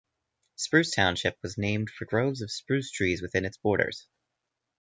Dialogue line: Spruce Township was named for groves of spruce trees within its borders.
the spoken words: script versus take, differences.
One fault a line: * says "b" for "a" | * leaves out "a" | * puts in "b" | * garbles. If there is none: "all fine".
all fine